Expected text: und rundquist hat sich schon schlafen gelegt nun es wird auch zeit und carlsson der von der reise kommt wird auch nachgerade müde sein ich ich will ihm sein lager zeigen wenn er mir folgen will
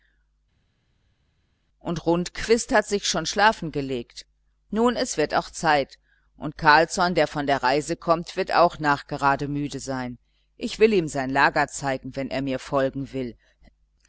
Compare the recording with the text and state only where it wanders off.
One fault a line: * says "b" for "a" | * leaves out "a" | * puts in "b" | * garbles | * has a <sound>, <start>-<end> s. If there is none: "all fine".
* leaves out "ich"